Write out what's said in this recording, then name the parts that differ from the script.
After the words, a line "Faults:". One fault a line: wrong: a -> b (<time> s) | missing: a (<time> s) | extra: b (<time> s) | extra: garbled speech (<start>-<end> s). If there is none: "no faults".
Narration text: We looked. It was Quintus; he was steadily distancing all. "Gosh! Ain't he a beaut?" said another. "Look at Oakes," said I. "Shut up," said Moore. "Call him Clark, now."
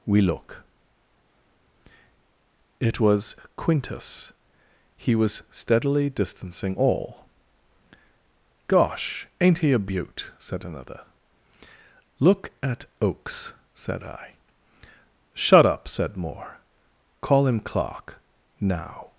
We look. It was Quintus; he was steadily distancing all. "Gosh! Ain't he a beaut?" said another. "Look at Oakes," said I. "Shut up," said Moore. "Call him Clark, now."
Faults:
wrong: looked -> look (0.2 s)